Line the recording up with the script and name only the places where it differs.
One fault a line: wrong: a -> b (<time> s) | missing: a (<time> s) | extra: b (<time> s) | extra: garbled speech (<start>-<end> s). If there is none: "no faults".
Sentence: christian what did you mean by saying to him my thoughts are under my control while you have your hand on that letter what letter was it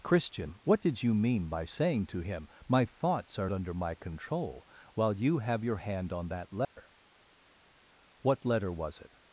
no faults